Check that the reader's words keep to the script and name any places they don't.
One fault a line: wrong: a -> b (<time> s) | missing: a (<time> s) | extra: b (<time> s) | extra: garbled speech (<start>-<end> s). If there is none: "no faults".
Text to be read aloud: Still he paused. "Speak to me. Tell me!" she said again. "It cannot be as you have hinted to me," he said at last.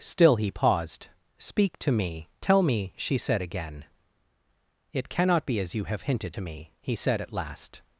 no faults